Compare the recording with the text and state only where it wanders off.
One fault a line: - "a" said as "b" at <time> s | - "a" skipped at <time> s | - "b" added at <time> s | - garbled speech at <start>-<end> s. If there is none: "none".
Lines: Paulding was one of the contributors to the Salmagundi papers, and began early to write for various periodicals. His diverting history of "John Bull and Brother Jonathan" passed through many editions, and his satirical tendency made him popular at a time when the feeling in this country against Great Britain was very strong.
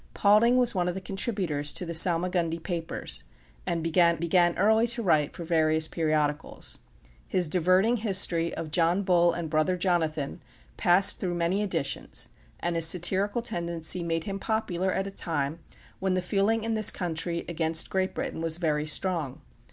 - "began" added at 4.2 s